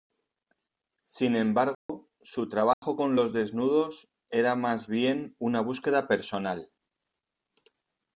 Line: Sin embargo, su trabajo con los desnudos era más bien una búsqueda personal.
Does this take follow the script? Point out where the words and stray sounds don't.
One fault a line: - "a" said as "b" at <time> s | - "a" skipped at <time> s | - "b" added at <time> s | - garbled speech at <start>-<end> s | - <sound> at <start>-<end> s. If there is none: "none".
- dropout at 1.7-1.9 s
- dropout at 2.7-2.8 s